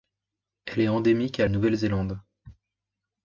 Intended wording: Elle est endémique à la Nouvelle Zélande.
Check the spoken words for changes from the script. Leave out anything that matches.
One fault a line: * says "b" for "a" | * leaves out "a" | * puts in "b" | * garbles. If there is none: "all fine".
* leaves out "la"